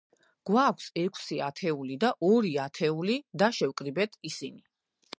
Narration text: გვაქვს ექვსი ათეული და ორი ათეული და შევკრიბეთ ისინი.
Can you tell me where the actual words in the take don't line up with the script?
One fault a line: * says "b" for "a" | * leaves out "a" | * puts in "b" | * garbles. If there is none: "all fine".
all fine